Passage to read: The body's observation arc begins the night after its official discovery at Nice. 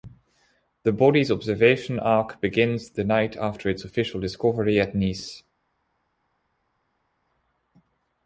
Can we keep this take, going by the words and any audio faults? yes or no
yes